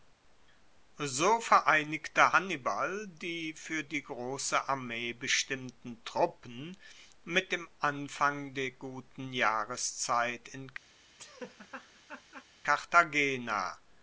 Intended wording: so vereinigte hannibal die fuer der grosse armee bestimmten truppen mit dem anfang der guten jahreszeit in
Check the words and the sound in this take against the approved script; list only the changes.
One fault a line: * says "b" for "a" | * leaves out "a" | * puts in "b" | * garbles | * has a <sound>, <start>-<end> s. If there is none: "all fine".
* says "die" for "der"
* has a laugh, 11.2-12.5 s